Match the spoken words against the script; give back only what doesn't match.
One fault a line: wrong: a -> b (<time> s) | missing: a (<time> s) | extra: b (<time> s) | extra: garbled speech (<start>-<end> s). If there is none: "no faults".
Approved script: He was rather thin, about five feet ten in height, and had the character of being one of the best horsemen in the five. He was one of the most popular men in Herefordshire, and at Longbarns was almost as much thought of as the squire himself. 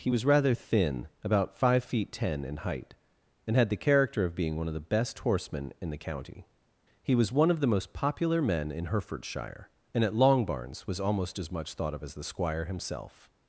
wrong: five -> county (6.0 s)